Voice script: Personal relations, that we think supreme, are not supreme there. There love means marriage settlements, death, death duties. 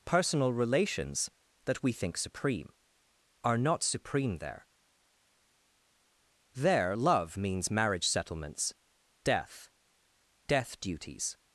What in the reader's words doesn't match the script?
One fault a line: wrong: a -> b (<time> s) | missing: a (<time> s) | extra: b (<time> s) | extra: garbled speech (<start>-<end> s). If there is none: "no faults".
no faults